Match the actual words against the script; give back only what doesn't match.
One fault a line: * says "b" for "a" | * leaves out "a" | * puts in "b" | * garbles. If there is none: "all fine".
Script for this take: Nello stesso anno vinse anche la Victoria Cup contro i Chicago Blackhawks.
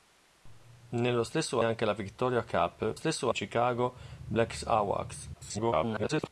* leaves out "anno vinse"
* says "stesso" for "contro"
* garbles